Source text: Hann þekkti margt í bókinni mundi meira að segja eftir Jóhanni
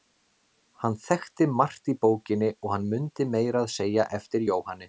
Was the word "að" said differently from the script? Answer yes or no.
no